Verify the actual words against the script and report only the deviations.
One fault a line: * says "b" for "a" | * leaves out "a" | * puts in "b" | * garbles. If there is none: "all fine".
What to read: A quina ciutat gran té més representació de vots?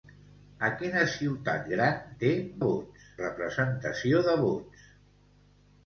* says "vots" for "més"